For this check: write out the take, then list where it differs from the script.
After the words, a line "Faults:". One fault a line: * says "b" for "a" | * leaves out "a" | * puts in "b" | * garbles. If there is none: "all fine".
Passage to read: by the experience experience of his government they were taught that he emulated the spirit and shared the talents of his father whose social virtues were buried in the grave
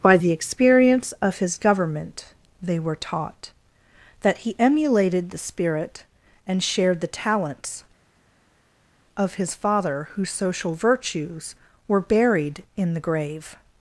by the experience of his government they were taught that he emulated the spirit and shared the talents of his father whose social virtues were buried in the grave
Faults:
* leaves out "experience"